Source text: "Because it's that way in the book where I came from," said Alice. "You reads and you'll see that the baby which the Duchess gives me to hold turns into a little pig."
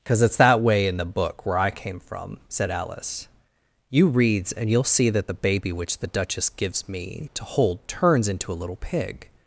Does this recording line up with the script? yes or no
yes